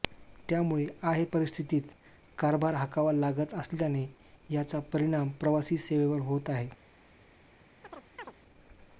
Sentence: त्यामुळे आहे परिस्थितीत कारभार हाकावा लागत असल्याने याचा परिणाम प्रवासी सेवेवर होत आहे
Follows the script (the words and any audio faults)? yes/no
no